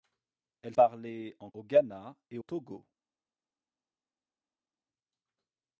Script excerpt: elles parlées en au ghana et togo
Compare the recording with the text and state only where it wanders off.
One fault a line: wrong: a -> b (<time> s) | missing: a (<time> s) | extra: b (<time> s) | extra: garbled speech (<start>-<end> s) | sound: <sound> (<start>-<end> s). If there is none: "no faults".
no faults